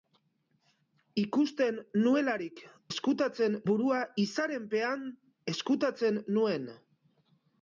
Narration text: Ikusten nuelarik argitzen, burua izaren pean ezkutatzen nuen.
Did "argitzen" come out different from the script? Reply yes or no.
yes